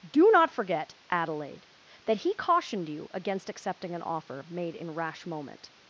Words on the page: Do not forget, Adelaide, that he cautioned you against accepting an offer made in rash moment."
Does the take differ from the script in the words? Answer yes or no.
no